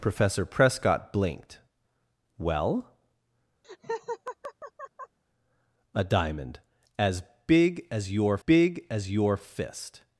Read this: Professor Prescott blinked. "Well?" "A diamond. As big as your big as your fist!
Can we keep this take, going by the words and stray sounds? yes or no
no